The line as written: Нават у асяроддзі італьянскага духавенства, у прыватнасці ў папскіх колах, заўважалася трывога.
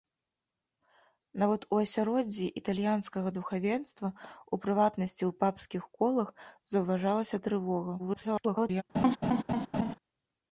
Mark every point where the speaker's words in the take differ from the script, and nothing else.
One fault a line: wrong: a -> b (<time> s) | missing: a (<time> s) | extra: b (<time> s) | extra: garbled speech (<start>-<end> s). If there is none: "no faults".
extra: garbled speech (8.0-8.8 s)